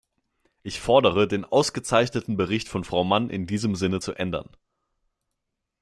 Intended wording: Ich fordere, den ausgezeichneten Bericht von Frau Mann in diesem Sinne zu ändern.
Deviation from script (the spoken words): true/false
false